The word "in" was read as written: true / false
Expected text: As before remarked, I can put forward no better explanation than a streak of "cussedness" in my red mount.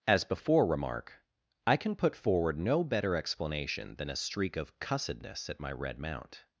false